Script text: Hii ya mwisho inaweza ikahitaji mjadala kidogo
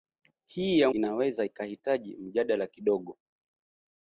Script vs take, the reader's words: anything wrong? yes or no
yes